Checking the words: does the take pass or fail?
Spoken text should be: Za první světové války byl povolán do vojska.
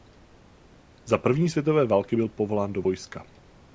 pass